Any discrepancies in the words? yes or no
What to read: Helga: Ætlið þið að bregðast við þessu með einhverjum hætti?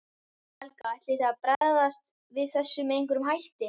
no